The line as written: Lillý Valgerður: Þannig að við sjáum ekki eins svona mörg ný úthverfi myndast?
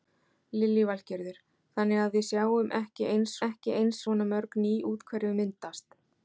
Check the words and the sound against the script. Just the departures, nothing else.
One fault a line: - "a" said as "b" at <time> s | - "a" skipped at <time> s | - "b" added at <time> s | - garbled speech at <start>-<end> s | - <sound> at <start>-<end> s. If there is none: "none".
- "ekki eins" added at 3.5 s